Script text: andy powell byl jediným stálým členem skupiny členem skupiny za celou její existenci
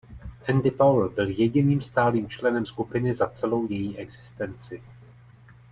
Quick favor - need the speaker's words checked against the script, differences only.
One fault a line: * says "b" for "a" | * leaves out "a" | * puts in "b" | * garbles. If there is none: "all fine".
* leaves out "členem skupiny"